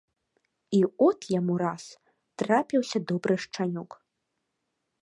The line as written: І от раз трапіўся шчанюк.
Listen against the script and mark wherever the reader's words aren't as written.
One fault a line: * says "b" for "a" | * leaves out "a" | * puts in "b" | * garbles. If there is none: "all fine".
* puts in "яму"
* puts in "добры"